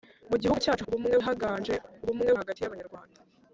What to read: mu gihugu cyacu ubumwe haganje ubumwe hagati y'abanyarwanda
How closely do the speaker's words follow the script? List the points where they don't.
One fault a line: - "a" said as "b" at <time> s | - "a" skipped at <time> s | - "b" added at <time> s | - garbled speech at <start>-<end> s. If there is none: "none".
none